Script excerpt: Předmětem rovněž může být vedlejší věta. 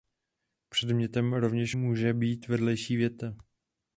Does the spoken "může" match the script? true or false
true